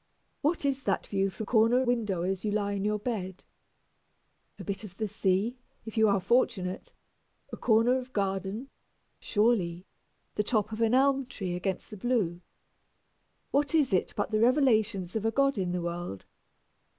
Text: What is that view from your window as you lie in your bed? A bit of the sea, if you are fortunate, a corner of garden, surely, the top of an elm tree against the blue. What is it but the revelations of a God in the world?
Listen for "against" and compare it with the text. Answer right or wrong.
right